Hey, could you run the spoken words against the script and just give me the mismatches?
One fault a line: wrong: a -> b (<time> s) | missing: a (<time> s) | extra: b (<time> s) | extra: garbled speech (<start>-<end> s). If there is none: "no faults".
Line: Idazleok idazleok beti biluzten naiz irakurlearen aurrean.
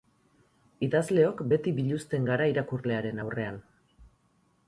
missing: idazleok (1.4 s)
wrong: naiz -> gara (2.3 s)